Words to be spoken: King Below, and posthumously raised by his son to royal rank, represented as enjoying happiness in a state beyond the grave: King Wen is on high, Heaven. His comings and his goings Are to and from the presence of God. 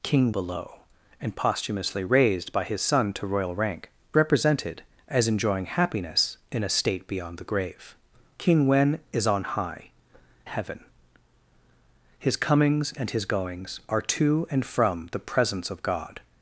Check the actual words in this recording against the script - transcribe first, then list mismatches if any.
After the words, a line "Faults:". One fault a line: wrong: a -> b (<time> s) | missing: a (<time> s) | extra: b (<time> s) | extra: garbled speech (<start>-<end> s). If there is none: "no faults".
King Below, and posthumously raised by his son to royal rank, represented as enjoying happiness in a state beyond the grave: King Wen is on high, Heaven. His comings and his goings Are to and from the presence of God.
Faults:
no faults